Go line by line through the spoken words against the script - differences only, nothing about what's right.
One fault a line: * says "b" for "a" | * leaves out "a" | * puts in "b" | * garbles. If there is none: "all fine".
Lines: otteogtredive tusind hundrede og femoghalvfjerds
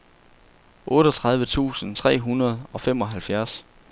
* puts in "tre"